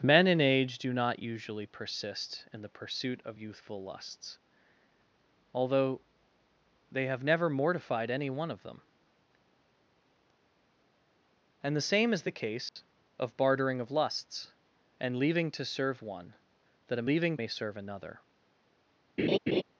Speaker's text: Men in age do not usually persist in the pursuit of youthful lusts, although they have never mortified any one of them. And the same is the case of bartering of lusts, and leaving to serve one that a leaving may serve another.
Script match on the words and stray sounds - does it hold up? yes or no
no